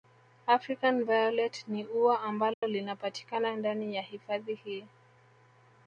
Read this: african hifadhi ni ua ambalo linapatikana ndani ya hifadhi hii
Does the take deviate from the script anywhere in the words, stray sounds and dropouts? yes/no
yes